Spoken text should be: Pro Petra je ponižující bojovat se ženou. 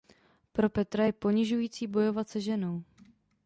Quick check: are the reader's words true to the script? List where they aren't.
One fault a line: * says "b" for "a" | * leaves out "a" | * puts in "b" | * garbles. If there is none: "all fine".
all fine